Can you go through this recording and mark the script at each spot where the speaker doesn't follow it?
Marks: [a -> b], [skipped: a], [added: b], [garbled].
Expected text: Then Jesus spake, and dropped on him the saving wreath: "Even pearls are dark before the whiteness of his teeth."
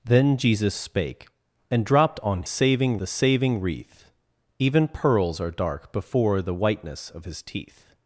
Then Jesus spake, and dropped on [him -> saving] the saving wreath: "Even pearls are dark before the whiteness of his teeth."